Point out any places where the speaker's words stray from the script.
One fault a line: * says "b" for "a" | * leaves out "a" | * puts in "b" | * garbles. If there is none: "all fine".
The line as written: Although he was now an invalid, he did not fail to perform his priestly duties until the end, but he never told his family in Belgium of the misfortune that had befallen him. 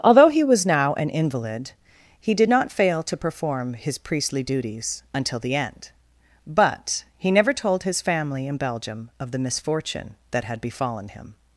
all fine